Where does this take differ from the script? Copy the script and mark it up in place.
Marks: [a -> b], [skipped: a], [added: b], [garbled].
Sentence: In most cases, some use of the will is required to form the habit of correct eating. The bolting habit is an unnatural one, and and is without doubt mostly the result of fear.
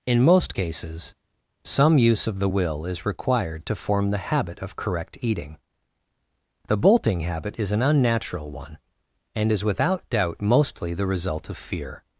In most cases, some use of the will is required to form the habit of correct eating. The bolting habit is an unnatural one, and [skipped: and] is without doubt mostly the result of fear.